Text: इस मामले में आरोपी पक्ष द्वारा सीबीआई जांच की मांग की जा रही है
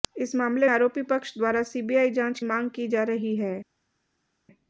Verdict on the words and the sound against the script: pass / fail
fail